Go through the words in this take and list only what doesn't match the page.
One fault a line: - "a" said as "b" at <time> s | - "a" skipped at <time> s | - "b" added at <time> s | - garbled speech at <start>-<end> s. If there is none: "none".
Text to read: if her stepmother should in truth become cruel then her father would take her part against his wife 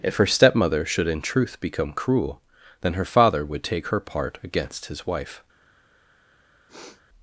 none